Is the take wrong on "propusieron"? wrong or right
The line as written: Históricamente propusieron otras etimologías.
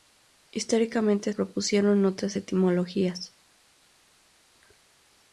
right